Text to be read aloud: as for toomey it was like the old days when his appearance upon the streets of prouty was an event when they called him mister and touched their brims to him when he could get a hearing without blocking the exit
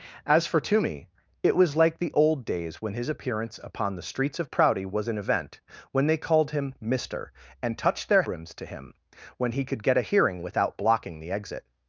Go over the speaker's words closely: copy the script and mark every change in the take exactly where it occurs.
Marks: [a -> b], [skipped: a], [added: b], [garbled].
as for toomey it was like the old days when his appearance upon the streets of prouty was an event when they called him mister and touched their brims to him when he could get a hearing without blocking the exit